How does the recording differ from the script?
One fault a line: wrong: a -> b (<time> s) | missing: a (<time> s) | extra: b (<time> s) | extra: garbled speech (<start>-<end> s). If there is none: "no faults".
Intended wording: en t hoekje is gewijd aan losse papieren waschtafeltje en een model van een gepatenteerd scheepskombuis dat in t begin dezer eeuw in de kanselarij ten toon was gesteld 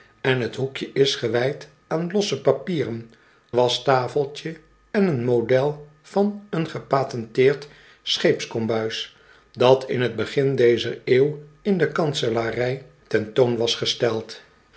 no faults